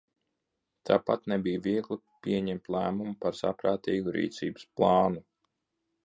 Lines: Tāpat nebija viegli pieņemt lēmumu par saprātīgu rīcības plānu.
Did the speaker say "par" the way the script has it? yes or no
yes